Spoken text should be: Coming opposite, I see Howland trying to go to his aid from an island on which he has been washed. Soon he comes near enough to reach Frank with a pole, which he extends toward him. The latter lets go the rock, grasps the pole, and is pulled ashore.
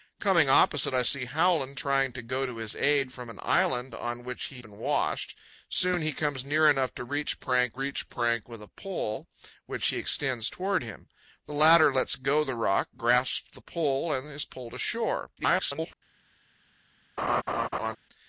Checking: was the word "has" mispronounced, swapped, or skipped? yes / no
yes